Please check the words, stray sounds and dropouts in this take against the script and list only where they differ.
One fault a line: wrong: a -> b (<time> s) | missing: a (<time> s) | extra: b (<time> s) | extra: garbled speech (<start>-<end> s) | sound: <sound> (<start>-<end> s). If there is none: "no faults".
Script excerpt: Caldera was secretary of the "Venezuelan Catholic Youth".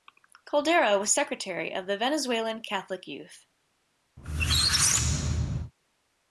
sound: squeak (4.2-5.7 s)